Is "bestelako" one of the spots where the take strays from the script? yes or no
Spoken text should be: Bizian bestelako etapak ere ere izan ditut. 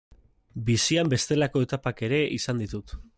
no